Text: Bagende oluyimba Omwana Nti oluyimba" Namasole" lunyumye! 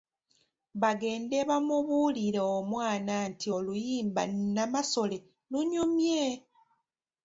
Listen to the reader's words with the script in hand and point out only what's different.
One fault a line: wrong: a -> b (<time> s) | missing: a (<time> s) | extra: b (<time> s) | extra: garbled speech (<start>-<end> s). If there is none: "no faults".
wrong: oluyimba -> bamubuulire (1.5 s)